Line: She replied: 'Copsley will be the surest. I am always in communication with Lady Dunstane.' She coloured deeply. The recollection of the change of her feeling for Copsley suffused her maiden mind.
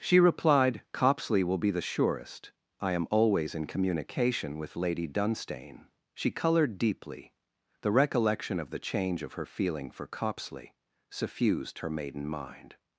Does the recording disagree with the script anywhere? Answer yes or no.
no